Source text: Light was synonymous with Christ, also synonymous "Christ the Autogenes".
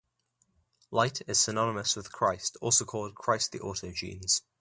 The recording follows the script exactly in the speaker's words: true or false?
false